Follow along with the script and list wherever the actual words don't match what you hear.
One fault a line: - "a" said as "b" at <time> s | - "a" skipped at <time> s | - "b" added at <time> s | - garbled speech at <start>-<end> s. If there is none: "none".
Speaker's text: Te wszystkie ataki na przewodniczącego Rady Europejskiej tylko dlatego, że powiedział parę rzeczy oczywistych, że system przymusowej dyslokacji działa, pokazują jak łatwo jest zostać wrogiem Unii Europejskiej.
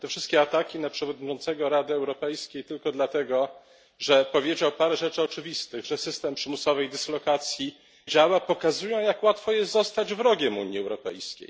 none